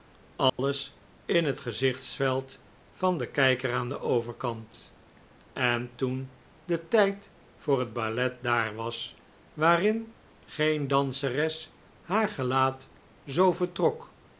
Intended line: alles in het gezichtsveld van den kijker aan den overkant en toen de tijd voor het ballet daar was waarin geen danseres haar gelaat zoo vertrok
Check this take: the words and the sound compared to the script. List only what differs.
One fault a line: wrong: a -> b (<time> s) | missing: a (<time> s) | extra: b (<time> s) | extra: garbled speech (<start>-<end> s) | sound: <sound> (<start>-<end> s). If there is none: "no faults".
sound: dropout (0.5-0.6 s)